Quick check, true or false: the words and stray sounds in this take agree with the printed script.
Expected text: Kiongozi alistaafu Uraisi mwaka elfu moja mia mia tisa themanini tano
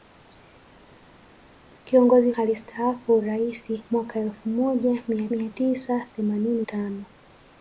true